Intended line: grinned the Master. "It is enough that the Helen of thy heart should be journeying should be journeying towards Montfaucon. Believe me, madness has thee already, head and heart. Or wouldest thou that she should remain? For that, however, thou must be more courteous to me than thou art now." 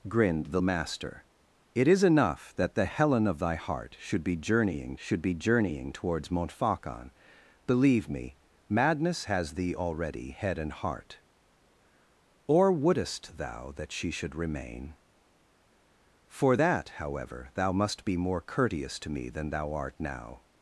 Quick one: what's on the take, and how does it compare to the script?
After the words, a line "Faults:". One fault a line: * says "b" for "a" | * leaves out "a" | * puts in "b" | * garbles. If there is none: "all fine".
grinned the Master. "It is enough that the Helen of thy heart should be journeying should be journeying towards Montfaucon. Believe me, madness has thee already, head and heart. Or wouldest thou that she should remain? For that, however, thou must be more courteous to me than thou art now."
Faults:
all fine